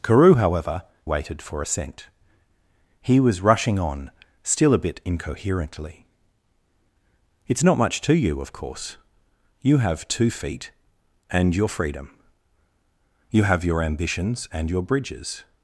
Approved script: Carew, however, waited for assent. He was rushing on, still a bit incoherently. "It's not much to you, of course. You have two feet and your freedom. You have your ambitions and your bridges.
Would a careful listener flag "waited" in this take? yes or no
no